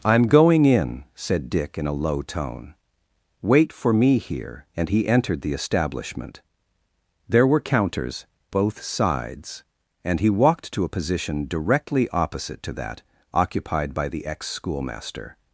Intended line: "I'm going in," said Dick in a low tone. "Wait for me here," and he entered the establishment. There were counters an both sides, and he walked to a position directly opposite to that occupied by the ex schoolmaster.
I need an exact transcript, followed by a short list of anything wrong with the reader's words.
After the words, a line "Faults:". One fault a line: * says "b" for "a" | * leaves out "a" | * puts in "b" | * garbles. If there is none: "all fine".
"I'm going in," said Dick in a low tone. "Wait for me here," and he entered the establishment. There were counters both sides, and he walked to a position directly opposite to that occupied by the ex schoolmaster.
Faults:
* leaves out "an"